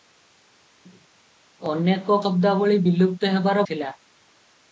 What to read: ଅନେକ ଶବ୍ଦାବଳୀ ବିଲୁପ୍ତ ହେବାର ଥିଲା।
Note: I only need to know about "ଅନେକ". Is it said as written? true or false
true